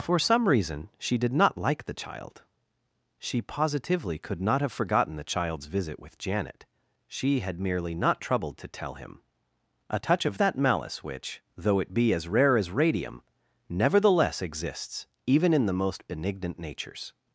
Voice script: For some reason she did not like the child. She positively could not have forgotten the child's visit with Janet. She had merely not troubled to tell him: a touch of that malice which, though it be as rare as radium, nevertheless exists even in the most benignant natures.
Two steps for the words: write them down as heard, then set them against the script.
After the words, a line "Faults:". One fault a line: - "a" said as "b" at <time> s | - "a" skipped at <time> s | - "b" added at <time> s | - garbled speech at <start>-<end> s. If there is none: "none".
For some reason she did not like the child. She positively could not have forgotten the child's visit with Janet. She had merely not troubled to tell him: a touch of that malice which, though it be as rare as radium, nevertheless exists even in the most benignant natures.
Faults:
none